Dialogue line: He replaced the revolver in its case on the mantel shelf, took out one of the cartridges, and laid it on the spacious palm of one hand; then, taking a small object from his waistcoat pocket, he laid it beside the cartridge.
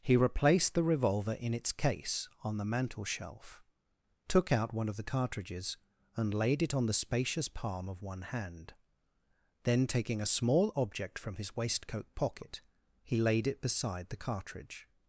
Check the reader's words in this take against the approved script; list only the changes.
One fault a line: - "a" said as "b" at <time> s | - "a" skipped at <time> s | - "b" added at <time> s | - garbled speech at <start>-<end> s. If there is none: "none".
none